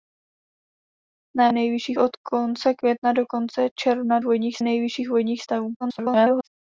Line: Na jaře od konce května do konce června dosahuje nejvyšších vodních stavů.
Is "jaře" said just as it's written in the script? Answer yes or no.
no